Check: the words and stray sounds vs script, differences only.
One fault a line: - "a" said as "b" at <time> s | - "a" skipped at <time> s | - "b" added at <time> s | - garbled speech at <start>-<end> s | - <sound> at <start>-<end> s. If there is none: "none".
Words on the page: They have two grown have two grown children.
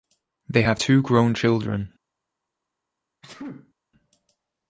- "have two grown" skipped at 1.3 s
- sneeze at 3.2-3.7 s